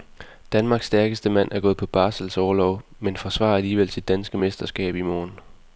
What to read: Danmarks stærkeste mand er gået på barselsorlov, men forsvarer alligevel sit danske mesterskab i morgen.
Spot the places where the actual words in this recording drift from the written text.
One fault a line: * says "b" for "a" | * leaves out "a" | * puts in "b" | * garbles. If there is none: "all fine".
all fine